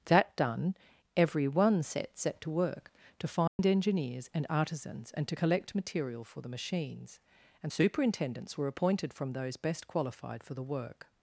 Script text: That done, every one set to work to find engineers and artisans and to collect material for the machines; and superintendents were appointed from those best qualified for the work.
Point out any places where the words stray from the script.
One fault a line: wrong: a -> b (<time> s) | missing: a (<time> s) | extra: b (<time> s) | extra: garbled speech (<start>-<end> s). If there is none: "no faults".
extra: set (2.2 s)